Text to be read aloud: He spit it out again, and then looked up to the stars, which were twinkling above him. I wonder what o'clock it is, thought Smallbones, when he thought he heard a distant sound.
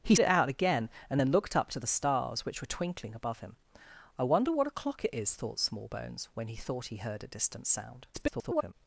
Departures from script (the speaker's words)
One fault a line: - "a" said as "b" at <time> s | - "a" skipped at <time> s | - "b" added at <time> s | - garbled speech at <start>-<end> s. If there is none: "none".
- "spit" skipped at 0.1 s
- garbled speech at 8.1-8.7 s